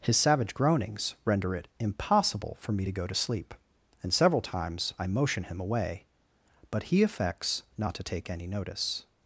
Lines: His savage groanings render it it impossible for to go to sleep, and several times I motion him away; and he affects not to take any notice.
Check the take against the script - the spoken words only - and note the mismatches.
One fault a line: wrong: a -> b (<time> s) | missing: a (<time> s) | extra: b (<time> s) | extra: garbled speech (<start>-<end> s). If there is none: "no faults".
missing: it (1.7 s)
extra: me (2.7 s)
wrong: and -> but (6.7 s)